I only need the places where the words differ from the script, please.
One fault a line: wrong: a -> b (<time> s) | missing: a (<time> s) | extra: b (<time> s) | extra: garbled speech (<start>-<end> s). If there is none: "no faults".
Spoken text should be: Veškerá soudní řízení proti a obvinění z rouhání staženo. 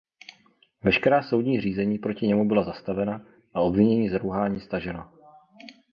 extra: němu byla zastavena (2.3 s)